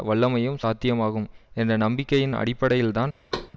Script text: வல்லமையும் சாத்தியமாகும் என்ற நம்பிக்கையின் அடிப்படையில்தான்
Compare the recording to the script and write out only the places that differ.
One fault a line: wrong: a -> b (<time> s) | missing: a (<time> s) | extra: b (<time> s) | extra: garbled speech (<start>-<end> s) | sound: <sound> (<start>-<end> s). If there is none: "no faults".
sound: thud (3.3-3.5 s)